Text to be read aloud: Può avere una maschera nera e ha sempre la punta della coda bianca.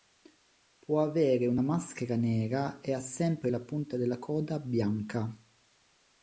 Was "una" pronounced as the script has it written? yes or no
yes